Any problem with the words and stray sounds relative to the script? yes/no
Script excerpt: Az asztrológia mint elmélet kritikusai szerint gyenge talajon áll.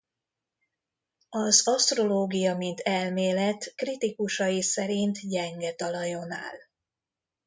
no